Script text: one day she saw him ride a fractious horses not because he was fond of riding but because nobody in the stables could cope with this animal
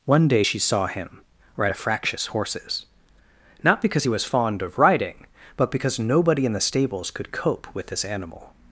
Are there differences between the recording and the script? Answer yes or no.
no